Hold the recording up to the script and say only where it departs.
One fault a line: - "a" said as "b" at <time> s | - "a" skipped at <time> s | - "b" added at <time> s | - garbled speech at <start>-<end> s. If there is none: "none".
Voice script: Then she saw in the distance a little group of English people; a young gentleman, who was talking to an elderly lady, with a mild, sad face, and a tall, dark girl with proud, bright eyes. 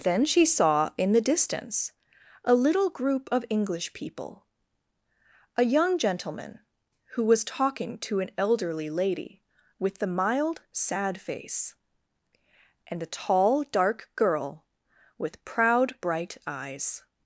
- "a" said as "the" at 10.0 s